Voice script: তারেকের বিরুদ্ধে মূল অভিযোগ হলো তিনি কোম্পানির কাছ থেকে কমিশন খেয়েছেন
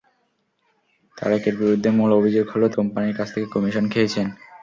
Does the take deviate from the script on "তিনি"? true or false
true